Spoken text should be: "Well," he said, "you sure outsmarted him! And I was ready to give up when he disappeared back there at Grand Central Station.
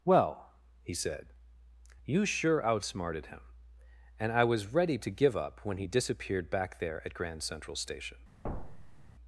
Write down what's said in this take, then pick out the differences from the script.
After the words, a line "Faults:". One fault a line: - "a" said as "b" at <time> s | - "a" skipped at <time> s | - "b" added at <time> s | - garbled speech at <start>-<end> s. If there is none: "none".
"Well," he said, "you sure outsmarted him! And I was ready to give up when he disappeared back there at Grand Central Station.
Faults:
none